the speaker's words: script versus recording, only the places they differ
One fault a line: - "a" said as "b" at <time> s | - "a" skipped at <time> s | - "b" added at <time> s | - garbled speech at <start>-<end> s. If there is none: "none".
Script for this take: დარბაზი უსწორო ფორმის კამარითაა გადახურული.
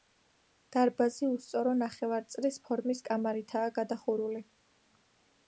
- "ნახევარწრის" added at 1.8 s